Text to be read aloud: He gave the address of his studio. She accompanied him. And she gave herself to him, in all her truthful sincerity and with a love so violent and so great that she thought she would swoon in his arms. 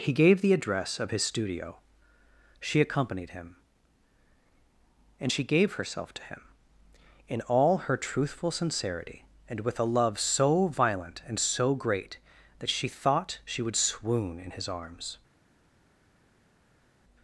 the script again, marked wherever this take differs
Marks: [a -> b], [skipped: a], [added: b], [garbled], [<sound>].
He gave the address of his studio. She accompanied him. And she gave herself to him, in all her truthful sincerity and with a love so violent and so great that she thought she would swoon in his arms.